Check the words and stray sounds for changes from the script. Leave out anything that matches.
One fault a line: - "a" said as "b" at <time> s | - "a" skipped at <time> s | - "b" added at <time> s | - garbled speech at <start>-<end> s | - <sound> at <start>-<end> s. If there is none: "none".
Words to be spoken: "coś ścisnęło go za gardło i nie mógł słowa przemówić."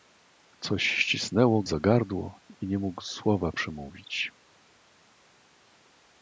- "go" skipped at 1.6 s